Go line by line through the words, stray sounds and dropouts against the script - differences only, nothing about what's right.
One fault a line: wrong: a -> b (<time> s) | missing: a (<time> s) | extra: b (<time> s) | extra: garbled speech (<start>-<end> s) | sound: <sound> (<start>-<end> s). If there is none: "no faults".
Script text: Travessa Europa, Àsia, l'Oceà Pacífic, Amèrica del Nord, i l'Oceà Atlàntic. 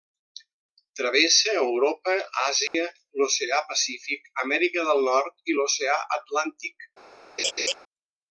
sound: dropout (2.7-2.7 s)
sound: laugh (7.4-7.7 s)